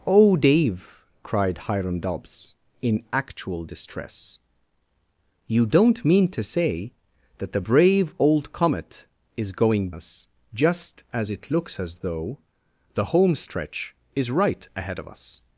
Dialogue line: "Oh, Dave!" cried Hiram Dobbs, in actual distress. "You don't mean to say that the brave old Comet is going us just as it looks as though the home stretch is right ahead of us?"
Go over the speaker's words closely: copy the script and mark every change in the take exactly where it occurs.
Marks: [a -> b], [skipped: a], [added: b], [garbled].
"Oh, Dave!" cried Hiram Dobbs, in actual distress. "You don't mean to say that the brave old Comet is going us just as it looks as though the home stretch is right ahead of us?"